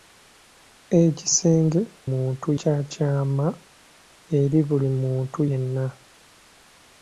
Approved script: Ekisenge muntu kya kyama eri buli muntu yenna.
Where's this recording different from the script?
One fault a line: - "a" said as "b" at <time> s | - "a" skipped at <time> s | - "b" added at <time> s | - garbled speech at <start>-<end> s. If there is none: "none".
none